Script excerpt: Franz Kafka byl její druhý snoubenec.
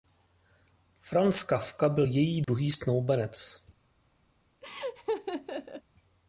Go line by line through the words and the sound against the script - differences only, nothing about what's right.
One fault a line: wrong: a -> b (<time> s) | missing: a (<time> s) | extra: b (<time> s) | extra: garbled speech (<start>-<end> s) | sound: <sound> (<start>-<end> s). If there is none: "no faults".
sound: dropout (2.4-2.5 s)
sound: laugh (4.6-5.8 s)